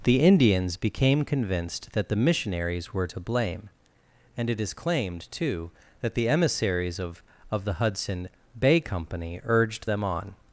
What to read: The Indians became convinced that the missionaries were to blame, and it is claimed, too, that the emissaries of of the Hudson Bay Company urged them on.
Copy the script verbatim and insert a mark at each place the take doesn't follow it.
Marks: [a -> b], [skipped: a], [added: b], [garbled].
The Indians became convinced that the missionaries were to blame, and it is claimed, too, that the emissaries of of the Hudson Bay Company urged them on.